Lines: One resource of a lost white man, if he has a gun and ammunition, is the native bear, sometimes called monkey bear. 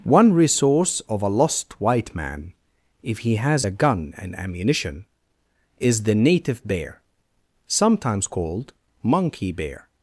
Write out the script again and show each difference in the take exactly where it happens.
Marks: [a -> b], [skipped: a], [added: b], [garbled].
One resource of a lost white man, if he has a gun and ammunition, is the native bear, sometimes called monkey bear.